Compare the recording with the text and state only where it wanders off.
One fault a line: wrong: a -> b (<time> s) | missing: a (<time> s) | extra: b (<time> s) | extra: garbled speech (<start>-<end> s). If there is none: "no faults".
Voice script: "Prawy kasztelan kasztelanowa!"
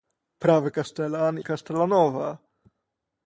no faults